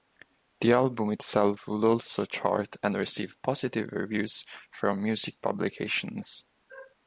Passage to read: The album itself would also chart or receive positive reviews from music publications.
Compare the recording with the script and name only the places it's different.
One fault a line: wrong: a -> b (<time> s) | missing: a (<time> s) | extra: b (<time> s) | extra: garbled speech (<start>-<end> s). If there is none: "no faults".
wrong: or -> and (2.8 s)